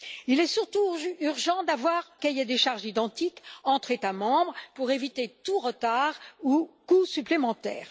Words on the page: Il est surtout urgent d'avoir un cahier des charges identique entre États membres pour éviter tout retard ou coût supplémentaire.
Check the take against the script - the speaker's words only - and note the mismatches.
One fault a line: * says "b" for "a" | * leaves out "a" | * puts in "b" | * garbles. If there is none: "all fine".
* leaves out "un"